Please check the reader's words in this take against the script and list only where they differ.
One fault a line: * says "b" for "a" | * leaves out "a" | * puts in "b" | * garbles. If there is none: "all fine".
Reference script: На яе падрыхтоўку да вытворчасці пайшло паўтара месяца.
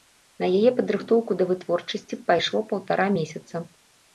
all fine